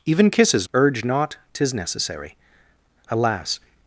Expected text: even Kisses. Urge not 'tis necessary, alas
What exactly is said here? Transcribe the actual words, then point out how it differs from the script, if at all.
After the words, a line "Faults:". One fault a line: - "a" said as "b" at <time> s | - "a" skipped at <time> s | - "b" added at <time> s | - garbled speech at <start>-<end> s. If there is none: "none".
even Kisses. Urge not 'tis necessary, alas
Faults:
none